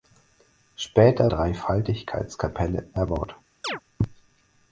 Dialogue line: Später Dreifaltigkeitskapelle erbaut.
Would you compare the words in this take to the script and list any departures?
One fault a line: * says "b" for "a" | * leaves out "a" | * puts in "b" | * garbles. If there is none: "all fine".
all fine